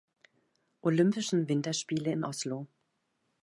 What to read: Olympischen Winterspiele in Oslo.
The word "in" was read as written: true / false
true